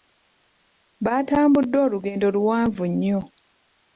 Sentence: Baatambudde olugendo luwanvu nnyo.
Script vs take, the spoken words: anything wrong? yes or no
no